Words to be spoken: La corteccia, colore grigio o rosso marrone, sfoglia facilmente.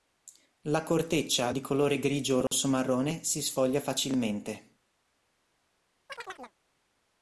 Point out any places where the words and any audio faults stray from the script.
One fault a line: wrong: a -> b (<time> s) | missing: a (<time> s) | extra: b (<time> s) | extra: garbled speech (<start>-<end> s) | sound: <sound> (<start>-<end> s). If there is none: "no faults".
extra: di (1.5 s)
sound: dropout (2.5-2.5 s)
extra: si (3.2 s)
sound: chirp (6.1-6.6 s)